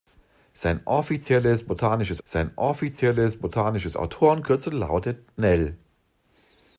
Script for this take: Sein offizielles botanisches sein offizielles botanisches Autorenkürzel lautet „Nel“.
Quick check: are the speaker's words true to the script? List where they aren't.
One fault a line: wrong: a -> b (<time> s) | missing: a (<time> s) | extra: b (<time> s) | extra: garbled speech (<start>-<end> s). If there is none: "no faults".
no faults